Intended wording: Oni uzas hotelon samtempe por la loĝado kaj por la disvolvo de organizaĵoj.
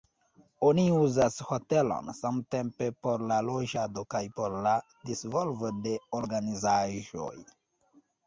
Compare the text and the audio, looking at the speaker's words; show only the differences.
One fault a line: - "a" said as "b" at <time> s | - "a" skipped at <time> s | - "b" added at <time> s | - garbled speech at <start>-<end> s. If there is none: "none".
none